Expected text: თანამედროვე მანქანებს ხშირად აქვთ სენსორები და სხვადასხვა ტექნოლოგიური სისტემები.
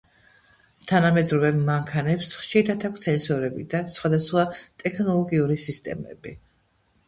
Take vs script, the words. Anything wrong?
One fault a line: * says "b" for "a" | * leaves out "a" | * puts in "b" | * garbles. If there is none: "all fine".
all fine